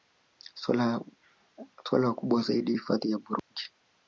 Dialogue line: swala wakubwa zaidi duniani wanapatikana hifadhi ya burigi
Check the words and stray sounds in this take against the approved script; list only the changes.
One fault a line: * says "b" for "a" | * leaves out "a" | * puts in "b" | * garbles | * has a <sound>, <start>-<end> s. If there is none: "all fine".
* leaves out "duniani wanapatikana"
* has a dropout, 3.4-3.5 s